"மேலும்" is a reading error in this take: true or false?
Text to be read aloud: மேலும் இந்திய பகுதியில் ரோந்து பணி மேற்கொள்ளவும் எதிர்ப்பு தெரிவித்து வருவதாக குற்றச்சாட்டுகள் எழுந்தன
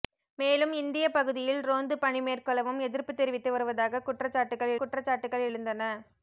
false